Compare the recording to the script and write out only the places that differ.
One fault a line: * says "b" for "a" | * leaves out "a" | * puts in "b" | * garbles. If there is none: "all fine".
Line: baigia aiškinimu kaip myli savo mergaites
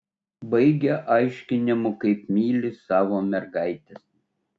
all fine